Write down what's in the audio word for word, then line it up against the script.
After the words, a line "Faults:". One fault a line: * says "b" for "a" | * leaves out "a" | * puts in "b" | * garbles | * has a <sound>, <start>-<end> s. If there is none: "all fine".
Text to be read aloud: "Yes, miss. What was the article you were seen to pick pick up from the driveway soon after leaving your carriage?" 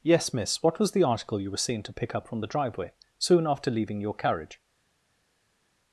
"Yes, miss. What was the article you were seen to pick up from the driveway soon after leaving your carriage?"
Faults:
* leaves out "pick"